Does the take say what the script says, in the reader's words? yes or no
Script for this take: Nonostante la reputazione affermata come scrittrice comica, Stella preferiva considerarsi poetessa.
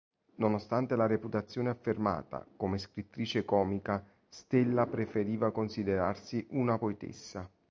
no